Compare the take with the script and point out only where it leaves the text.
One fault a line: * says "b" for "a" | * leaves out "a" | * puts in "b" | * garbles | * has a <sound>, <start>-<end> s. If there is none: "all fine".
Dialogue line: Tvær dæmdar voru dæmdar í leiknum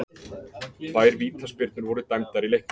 * says "vítaspyrnur" for "dæmdar"